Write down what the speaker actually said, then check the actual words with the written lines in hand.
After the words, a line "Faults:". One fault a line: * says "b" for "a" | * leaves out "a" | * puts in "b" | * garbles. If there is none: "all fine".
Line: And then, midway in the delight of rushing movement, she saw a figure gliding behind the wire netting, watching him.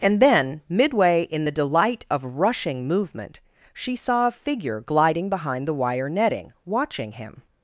And then, midway in the delight of rushing movement, she saw a figure gliding behind the wire netting, watching him.
Faults:
all fine